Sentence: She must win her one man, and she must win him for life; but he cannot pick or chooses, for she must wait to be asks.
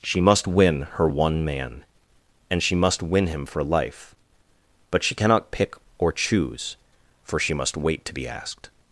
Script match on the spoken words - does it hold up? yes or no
no